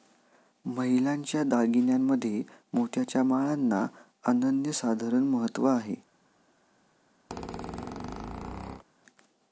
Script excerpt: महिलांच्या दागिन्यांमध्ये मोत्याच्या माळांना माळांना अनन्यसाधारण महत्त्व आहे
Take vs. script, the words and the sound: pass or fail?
fail